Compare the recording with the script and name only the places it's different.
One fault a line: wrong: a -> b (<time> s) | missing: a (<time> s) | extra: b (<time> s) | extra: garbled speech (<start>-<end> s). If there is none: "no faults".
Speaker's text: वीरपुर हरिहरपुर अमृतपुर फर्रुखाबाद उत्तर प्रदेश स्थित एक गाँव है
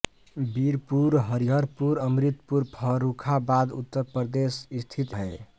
missing: एक गाँव (5.1 s)